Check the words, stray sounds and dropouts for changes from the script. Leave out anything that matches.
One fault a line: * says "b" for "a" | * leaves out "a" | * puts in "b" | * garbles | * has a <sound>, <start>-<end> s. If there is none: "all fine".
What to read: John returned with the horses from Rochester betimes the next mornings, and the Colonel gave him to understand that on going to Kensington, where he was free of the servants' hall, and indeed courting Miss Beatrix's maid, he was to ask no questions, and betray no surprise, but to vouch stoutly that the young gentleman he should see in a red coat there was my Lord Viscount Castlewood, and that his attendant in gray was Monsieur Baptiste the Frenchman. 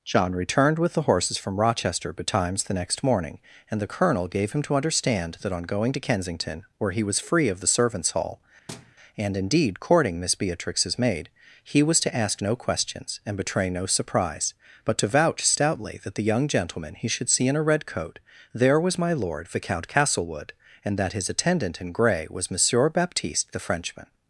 * says "morning" for "mornings"
* has a thud, 8.7-9.0 s